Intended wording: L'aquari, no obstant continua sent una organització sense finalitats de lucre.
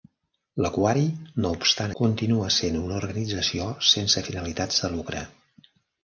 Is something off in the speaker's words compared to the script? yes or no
no